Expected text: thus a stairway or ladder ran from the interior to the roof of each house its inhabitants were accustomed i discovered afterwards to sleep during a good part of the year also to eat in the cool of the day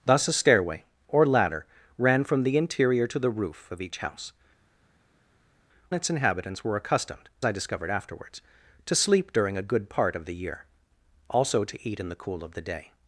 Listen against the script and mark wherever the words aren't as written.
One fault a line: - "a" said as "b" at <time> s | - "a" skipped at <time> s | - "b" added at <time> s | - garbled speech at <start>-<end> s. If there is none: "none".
none